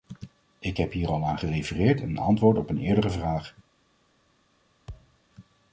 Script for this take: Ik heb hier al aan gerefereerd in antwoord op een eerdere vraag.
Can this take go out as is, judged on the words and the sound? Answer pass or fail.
fail